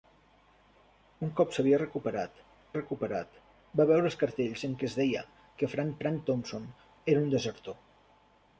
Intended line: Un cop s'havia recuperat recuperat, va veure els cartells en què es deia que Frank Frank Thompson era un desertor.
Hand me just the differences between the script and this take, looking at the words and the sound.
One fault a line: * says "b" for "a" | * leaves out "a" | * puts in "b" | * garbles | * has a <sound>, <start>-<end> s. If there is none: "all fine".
all fine